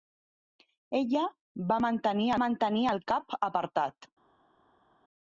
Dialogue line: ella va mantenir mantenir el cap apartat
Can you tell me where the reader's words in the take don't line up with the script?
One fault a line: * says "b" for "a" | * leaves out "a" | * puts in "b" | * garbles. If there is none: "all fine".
all fine